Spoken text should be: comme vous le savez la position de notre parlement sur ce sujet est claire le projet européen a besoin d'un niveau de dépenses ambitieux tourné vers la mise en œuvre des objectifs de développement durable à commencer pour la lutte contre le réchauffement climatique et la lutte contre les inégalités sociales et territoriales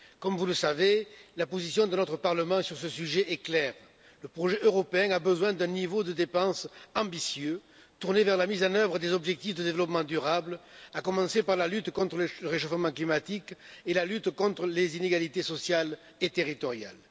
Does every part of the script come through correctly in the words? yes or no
no